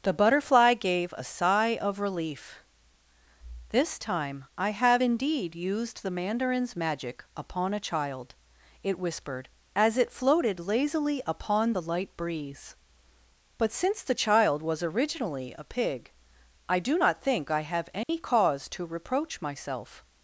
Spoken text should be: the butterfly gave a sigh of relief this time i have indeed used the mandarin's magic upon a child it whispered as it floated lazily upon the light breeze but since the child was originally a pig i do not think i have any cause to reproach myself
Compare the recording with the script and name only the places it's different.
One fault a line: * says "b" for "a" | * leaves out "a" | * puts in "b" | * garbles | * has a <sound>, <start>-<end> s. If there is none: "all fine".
* has a dropout, 18.0-18.1 s